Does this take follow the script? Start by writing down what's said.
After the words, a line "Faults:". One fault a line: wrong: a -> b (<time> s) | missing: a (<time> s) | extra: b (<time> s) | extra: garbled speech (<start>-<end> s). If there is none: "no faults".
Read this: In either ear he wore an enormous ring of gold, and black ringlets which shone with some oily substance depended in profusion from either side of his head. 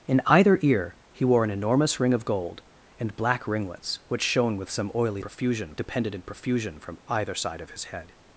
In either ear he wore an enormous ring of gold, and black ringlets which shone with some oily profusion depended in profusion from either side of his head.
Faults:
wrong: substance -> profusion (5.2 s)